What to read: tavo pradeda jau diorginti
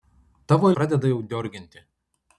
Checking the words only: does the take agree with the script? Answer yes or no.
yes